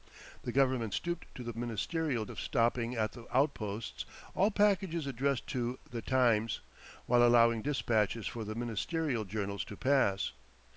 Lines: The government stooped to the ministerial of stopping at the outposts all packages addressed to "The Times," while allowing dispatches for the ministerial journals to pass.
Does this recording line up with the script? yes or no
yes